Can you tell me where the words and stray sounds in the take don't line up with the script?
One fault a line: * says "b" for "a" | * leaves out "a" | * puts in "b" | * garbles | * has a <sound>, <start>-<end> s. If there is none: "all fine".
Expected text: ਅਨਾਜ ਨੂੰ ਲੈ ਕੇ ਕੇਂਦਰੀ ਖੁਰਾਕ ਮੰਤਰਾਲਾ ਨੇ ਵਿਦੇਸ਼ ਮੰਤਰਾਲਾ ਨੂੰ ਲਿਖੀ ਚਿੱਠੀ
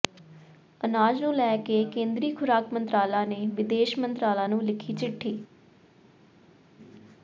all fine